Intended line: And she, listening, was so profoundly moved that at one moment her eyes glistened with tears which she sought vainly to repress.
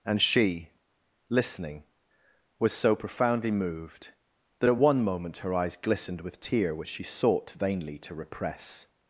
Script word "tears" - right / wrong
wrong